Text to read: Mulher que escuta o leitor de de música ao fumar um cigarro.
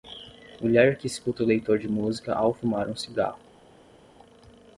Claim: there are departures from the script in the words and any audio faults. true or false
true